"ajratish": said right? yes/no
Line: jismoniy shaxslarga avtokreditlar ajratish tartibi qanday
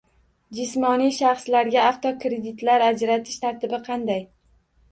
yes